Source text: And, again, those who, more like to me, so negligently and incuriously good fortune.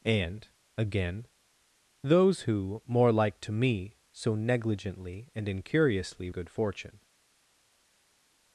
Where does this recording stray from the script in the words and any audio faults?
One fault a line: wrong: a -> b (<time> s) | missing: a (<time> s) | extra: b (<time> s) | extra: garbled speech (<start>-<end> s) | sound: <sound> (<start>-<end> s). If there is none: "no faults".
no faults